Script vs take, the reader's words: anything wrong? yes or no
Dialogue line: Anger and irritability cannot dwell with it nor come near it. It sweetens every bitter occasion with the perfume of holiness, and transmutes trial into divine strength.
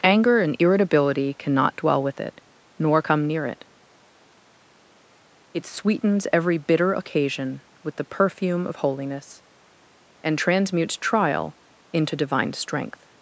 no